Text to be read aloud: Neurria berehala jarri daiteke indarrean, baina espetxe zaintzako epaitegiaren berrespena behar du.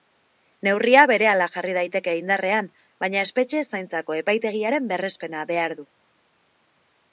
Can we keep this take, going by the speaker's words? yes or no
yes